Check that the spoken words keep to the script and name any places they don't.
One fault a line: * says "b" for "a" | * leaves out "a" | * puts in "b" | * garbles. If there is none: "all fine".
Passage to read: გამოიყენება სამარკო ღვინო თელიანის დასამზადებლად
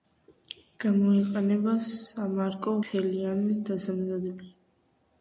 * leaves out "ღვინო"